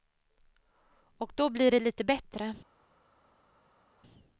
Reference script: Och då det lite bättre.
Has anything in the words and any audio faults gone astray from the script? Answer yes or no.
yes